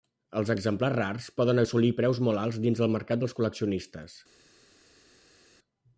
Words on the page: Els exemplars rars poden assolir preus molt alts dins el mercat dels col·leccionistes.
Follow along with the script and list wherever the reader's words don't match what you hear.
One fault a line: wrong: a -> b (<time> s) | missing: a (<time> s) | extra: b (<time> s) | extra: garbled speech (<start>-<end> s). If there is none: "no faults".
no faults